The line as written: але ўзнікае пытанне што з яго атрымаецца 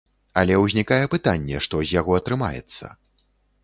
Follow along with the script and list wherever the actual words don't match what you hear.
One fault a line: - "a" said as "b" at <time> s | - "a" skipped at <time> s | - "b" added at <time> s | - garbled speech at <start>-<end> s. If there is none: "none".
none